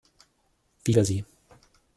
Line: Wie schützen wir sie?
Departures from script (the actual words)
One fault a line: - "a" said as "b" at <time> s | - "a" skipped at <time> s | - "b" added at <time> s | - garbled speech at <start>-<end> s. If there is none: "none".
- "schützen" skipped at 0.9 s